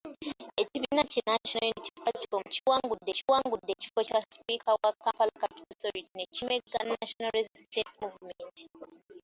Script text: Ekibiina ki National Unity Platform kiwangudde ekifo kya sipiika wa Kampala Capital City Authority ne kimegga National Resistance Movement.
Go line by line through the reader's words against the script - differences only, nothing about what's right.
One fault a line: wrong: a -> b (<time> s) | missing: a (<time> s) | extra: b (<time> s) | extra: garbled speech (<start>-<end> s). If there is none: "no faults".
extra: kiwangudde (3.2 s)
missing: City (5.7 s)